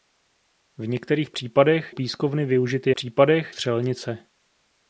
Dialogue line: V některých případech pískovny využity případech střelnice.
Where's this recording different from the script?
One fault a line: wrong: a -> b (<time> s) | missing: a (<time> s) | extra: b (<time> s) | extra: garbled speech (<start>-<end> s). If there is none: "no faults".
no faults